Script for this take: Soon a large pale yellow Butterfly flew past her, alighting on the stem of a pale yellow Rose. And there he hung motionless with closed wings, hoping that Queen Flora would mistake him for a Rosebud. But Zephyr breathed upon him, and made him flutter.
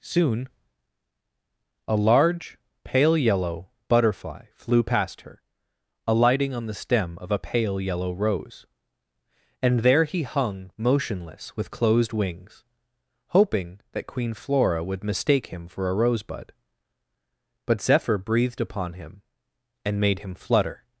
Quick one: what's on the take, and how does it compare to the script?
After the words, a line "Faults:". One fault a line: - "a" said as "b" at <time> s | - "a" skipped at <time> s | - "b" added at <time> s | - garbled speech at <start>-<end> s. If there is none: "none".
Soon a large pale yellow Butterfly flew past her, alighting on the stem of a pale yellow Rose. And there he hung motionless with closed wings, hoping that Queen Flora would mistake him for a Rosebud. But Zephyr breathed upon him, and made him flutter.
Faults:
none